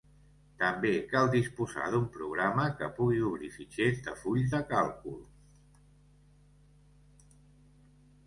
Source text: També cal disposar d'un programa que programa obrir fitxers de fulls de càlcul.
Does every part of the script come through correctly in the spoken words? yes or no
no